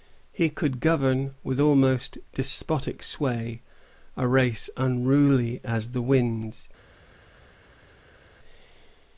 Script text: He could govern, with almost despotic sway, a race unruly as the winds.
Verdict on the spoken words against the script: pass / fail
pass